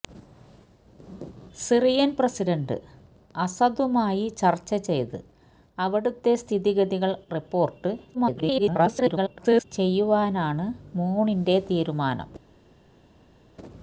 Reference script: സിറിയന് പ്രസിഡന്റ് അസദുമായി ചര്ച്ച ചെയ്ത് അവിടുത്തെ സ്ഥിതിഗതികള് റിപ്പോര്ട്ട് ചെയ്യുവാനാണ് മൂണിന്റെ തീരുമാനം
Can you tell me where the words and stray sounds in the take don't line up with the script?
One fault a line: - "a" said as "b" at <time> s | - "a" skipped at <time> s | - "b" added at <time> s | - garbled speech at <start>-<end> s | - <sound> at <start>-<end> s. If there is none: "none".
- garbled speech at 8.1-9.6 s